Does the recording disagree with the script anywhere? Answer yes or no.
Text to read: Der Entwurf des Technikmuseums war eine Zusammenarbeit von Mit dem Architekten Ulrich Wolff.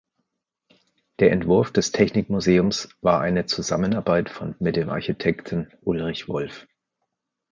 no